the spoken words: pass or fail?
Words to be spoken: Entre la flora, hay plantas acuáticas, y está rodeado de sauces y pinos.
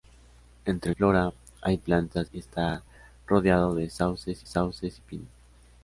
fail